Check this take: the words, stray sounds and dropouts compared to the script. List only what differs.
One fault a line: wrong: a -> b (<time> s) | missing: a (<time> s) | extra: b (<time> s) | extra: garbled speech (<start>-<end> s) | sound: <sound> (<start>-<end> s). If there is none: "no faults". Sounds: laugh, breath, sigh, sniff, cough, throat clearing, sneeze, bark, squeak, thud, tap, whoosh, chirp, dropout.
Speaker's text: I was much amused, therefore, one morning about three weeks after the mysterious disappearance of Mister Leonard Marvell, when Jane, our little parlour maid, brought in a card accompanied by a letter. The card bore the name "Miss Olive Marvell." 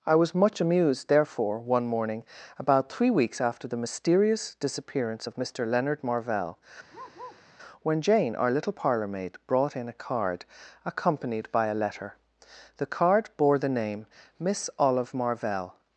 sound: bark (6.9-7.4 s)